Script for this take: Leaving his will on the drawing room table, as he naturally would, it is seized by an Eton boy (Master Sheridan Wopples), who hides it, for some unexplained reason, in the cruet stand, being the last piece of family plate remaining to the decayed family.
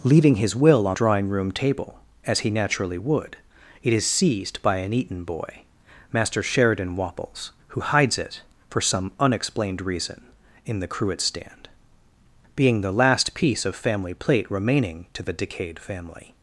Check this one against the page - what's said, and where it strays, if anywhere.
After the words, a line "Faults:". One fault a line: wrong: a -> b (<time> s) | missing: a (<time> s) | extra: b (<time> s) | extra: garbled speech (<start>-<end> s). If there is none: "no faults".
Leaving his will on drawing room table, as he naturally would, it is seized by an Eton boy (Master Sheridan Wopples), who hides it, for some unexplained reason, in the cruet stand, being the last piece of family plate remaining to the decayed family.
Faults:
missing: the (1.0 s)